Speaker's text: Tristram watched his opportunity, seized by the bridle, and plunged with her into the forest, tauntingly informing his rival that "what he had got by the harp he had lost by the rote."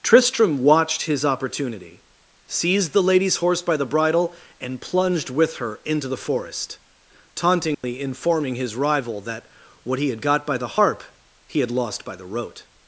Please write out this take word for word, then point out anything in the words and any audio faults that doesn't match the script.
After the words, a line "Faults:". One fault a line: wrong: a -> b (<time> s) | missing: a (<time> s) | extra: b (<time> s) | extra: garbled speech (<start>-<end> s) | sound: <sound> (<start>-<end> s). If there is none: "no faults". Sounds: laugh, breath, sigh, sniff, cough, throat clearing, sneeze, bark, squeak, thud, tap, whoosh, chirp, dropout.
Tristram watched his opportunity, seized the lady's horse by the bridle, and plunged with her into the forest, tauntingly informing his rival that "what he had got by the harp he had lost by the rote."
Faults:
extra: the lady's horse (2.9 s)
sound: dropout (7.7-7.8 s)